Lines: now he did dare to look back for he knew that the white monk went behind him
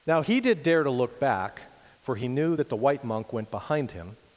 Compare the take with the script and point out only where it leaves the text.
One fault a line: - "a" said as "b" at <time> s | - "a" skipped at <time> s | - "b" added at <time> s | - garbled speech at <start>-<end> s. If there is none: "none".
none